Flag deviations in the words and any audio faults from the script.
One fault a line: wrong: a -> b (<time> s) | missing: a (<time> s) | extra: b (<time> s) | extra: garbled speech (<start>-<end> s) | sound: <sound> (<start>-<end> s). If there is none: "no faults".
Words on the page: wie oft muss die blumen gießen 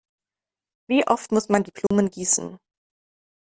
extra: man (1.5 s)
sound: dropout (1.9-1.9 s)